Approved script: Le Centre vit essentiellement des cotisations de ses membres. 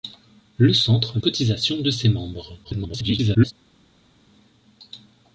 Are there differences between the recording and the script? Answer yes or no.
yes